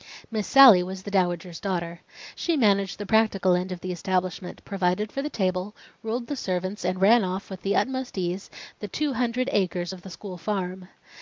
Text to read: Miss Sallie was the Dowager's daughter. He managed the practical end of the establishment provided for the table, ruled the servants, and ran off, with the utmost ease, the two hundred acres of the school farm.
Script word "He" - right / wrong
wrong